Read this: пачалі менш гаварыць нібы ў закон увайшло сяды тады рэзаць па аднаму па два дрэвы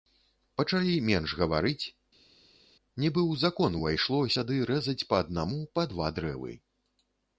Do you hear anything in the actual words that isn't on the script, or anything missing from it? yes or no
yes